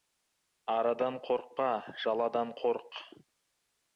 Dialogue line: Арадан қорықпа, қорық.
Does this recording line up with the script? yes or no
no